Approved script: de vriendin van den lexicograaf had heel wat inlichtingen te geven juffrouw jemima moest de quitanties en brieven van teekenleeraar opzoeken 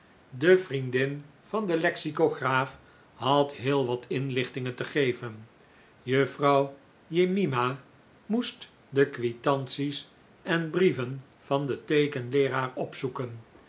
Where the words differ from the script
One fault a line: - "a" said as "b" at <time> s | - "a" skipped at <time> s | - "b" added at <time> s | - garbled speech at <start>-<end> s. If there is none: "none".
- "den" added at 11.7 s